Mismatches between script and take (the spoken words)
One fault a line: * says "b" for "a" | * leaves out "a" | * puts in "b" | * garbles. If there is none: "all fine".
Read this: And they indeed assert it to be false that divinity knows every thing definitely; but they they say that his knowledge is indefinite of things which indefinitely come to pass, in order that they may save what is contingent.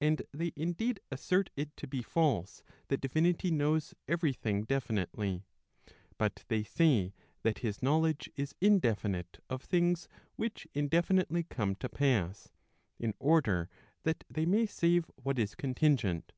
* leaves out "they"